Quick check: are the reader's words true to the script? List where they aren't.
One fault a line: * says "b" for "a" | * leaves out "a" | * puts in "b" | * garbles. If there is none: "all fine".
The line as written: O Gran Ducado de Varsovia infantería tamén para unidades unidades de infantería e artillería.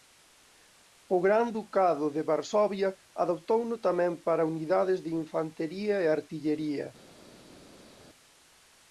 * says "adoptouno" for "infantería"
* leaves out "unidades"